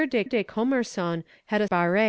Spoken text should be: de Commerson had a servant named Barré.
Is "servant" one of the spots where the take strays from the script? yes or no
yes